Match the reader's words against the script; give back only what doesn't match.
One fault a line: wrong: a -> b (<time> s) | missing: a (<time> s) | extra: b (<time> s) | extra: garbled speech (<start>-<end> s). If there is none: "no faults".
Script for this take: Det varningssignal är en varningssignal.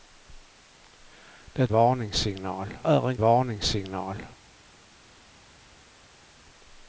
no faults